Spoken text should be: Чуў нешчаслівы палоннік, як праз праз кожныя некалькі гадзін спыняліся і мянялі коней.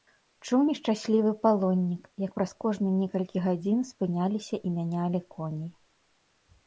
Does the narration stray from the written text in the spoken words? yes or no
yes